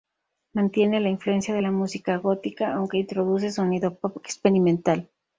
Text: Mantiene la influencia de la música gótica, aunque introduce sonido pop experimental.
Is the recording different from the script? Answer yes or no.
no